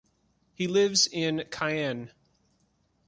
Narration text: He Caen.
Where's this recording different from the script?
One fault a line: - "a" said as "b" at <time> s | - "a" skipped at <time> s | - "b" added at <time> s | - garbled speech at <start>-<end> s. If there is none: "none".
- "lives in" added at 0.7 s